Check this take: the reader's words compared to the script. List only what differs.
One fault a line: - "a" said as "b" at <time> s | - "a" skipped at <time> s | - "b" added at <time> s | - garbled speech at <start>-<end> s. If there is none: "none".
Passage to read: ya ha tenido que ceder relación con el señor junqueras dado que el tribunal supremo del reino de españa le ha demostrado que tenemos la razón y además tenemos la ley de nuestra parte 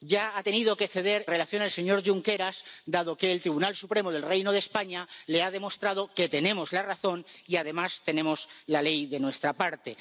none